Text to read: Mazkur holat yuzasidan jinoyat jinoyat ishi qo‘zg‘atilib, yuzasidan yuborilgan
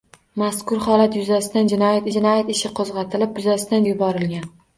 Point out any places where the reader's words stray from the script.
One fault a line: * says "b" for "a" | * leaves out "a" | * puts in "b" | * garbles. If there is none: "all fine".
all fine